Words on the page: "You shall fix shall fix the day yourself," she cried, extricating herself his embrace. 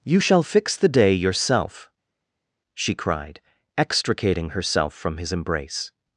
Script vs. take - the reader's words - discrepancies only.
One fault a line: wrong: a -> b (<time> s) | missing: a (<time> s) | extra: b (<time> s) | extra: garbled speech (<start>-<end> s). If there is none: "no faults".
missing: shall fix (0.8 s)
extra: from (4.9 s)